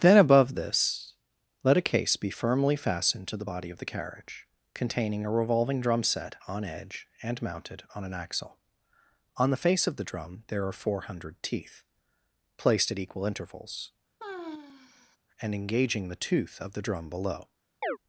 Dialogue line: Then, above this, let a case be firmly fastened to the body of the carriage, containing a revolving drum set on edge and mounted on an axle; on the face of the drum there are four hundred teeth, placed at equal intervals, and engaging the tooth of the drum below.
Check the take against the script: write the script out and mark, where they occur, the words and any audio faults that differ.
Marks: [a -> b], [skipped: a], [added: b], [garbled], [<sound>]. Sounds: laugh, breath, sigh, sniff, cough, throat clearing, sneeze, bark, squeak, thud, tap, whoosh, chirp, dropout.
Then, above this, let a case be firmly fastened to the body of the carriage, containing a revolving drum set on edge and mounted on an axle; on the face of the drum there are four hundred teeth, placed at equal intervals, [sigh] and engaging the tooth of the drum below. [chirp]